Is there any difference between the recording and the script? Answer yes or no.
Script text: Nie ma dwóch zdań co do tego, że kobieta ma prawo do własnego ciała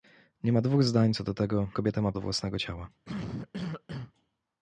yes